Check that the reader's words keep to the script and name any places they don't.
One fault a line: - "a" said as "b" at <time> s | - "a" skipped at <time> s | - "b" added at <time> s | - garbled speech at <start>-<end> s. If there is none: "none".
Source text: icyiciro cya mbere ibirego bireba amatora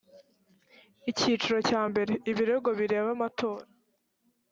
none